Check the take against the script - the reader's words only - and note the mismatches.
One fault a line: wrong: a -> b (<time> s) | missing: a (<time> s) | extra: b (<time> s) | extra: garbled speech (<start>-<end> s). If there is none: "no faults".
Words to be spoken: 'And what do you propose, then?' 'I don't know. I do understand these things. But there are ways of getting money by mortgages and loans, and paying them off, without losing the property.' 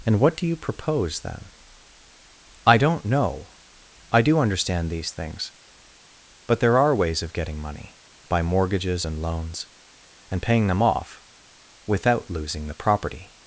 no faults